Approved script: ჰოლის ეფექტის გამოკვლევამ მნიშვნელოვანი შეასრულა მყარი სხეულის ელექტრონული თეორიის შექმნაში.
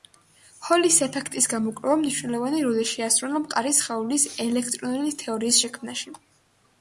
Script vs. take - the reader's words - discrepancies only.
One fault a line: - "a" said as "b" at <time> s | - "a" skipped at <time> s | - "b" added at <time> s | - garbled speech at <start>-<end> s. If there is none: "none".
- "როლი" added at 2.7 s